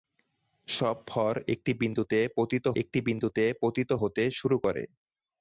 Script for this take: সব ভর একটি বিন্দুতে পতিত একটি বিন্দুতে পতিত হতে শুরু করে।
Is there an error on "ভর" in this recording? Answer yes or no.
no